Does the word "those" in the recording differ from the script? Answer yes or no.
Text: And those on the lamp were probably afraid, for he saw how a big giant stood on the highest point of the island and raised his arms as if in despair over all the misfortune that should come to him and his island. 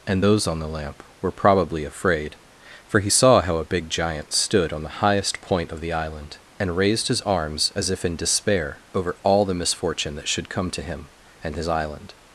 no